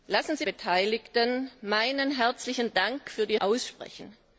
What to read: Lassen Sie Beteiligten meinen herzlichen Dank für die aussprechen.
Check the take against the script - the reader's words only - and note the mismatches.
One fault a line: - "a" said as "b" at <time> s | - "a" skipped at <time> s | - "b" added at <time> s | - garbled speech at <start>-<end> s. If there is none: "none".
none